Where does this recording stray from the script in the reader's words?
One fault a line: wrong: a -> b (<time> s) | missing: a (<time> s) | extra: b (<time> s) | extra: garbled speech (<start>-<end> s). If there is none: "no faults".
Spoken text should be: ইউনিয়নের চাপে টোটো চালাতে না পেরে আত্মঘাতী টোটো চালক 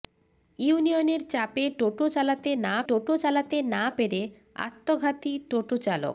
extra: টোটো চালাতে না (2.9 s)